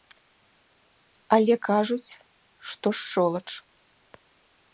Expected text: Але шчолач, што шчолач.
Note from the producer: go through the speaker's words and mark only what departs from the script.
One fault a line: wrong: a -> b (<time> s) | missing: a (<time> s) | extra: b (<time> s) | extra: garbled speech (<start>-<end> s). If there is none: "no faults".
wrong: шчолач -> кажуць (1.7 s)